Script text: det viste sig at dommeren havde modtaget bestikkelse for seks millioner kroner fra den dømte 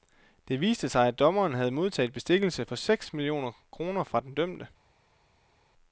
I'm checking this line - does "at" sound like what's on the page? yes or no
yes